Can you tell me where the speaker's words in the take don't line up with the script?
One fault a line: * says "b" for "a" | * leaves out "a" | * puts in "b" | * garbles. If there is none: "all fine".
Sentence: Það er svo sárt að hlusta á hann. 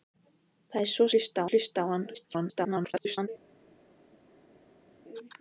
* says "hlusta" for "sárt"
* garbles